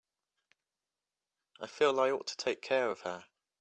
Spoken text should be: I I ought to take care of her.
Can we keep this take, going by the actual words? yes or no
no